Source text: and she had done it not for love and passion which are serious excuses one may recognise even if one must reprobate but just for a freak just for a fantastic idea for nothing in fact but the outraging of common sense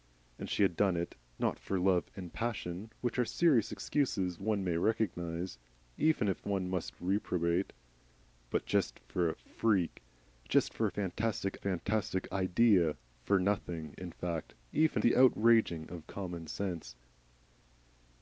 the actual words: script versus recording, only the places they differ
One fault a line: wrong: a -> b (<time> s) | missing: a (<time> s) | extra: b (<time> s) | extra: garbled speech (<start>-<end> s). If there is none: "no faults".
extra: fantastic (11.6 s)
wrong: but -> even (14.7 s)